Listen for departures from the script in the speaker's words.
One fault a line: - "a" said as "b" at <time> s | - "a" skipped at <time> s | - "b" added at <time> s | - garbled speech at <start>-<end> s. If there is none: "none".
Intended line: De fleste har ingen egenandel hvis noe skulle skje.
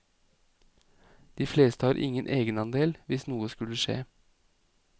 none